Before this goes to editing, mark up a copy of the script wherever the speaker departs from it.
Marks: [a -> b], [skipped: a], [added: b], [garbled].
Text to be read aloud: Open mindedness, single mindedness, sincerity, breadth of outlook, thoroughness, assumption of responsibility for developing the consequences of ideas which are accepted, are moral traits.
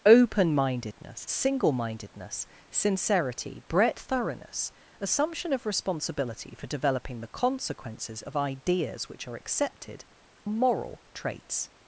Open mindedness, single mindedness, sincerity, breadth [skipped: of outlook,] thoroughness, assumption of responsibility for developing the consequences of ideas which are accepted, [skipped: are] moral traits.